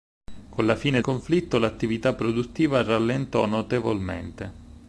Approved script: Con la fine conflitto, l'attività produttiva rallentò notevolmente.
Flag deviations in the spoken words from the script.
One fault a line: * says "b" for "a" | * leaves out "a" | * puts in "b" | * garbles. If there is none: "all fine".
all fine